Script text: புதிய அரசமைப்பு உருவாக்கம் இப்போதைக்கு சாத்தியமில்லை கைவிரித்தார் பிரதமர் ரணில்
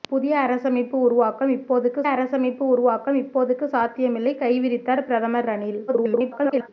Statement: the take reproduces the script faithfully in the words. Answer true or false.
false